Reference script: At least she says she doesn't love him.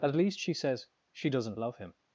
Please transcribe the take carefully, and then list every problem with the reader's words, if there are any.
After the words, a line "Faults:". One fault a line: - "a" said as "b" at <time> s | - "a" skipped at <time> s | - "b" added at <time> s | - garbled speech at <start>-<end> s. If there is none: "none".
At least she says she doesn't love him.
Faults:
none